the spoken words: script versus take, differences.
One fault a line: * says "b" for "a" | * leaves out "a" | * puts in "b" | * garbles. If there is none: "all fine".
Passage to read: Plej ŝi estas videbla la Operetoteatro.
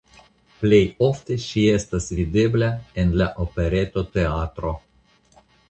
* puts in "ofte"
* puts in "en"